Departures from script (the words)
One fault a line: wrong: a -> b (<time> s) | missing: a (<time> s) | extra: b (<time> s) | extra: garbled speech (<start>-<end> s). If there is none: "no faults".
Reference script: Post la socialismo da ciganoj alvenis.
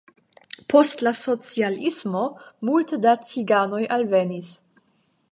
extra: multe (2.7 s)